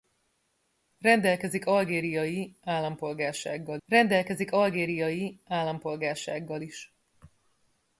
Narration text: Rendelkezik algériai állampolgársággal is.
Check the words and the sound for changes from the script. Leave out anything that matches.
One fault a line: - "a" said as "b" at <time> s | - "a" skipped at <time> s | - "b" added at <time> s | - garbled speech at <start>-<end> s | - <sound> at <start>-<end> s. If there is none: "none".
- "rendelkezik algériai állampolgársággal" added at 3.9 s